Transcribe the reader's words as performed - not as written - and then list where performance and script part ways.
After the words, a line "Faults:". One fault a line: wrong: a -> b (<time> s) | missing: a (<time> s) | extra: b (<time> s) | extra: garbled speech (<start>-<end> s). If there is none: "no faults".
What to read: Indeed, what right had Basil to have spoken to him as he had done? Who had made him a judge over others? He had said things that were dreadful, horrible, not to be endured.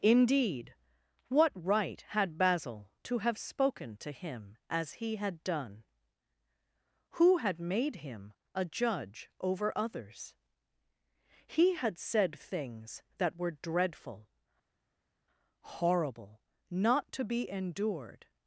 Indeed, what right had Basil to have spoken to him as he had done? Who had made him a judge over others? He had said things that were dreadful, horrible, not to be endured.
Faults:
no faults